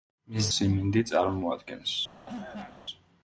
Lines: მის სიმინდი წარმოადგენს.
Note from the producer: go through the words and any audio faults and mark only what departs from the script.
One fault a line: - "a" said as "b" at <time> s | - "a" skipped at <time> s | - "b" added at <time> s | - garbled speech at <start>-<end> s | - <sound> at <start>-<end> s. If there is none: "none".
- cough at 2.3-2.8 s